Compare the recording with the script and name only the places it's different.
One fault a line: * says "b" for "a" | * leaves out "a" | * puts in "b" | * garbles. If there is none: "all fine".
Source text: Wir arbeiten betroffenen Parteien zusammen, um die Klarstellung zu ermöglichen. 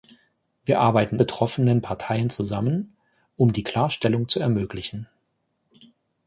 all fine